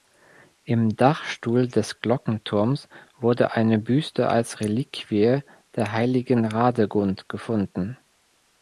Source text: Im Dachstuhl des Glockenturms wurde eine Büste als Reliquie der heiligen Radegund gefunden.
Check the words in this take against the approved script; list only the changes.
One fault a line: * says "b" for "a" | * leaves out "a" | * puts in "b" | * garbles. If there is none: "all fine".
all fine